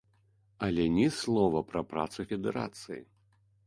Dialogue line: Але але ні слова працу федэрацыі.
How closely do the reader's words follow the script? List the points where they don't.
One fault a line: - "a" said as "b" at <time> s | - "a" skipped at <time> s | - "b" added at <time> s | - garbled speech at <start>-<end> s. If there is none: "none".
- "але" skipped at 0.8 s
- "пра" added at 1.7 s